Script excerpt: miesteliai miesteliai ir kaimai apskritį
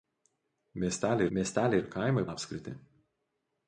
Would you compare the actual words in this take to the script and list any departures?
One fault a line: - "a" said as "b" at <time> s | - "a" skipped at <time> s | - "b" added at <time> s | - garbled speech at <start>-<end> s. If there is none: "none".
none